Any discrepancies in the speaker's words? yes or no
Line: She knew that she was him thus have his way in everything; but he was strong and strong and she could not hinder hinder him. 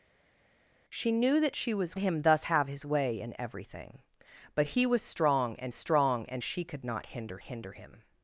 no